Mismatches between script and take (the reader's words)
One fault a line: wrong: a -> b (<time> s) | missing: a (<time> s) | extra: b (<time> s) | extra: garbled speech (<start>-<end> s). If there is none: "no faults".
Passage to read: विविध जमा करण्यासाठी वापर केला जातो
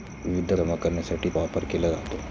no faults